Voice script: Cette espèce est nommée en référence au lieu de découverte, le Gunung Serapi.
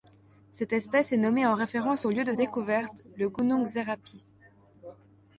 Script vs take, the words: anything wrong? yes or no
no